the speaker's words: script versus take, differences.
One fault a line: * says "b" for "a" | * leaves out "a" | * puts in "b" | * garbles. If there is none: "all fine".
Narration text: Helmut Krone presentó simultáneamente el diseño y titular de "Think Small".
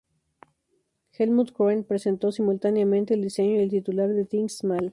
* puts in "el"